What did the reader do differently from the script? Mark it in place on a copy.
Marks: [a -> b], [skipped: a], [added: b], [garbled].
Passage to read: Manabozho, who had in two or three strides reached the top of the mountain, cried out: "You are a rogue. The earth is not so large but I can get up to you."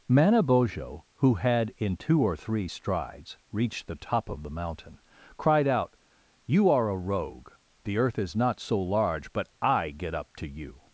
Manabozho, who had in two or three strides reached the top of the mountain, cried out: "You are a rogue. The earth is not so large but I [skipped: can] get up to you."